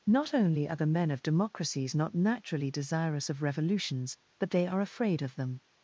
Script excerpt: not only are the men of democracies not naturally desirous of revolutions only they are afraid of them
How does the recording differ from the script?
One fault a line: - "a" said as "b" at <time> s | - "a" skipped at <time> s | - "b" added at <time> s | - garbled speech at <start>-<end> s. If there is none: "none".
- "only" said as "but" at 4.4 s